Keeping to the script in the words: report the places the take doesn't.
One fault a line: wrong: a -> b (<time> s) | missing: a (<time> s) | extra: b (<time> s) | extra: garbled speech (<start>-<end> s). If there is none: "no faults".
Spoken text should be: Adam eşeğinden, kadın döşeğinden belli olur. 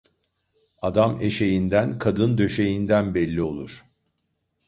no faults